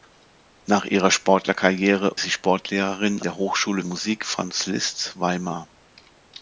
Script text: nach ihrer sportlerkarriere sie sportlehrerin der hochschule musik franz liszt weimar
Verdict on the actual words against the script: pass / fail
pass